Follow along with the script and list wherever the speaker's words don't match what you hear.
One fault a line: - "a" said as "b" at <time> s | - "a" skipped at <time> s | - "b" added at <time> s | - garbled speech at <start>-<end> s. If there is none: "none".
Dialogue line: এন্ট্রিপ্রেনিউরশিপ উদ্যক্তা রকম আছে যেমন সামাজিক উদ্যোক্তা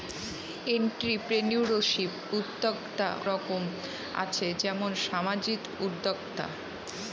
none